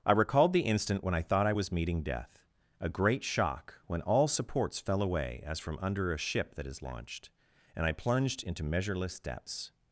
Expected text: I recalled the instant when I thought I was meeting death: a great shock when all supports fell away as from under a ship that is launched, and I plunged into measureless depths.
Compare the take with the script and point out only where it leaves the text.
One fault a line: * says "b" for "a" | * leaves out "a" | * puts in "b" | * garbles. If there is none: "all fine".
all fine